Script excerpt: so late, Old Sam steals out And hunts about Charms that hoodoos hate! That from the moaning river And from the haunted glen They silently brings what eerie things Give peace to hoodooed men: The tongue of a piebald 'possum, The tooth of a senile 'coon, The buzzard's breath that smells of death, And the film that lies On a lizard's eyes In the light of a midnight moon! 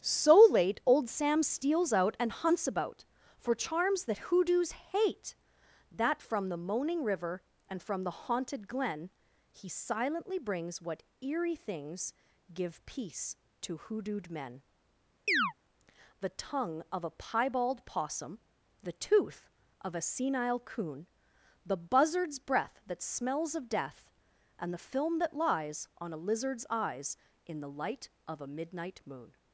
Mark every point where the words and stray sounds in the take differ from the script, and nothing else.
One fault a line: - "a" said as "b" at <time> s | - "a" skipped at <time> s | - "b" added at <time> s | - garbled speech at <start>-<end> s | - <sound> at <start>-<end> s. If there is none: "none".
- "For" added at 3.4 s
- "They" said as "He" at 9.5 s
- chirp at 15.3-15.5 s